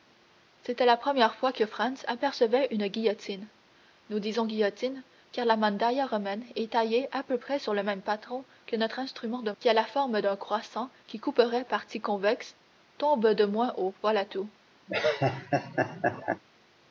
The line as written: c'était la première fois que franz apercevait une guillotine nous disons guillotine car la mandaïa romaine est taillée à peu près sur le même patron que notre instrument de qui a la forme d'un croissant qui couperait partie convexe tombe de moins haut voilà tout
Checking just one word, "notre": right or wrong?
right